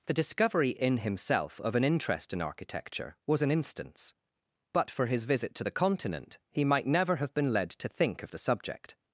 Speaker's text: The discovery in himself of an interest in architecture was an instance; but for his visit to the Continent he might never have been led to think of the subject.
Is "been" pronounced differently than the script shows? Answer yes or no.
no